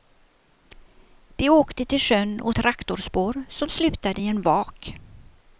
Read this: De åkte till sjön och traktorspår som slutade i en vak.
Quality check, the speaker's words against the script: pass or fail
pass